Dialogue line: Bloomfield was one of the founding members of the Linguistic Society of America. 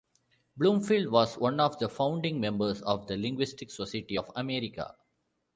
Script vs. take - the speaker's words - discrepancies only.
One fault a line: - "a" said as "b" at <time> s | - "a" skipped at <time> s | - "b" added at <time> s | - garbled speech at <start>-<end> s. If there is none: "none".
none